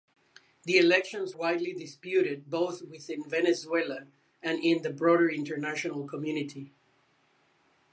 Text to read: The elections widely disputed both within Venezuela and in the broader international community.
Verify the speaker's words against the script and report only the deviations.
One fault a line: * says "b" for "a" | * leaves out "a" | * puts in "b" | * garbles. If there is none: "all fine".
all fine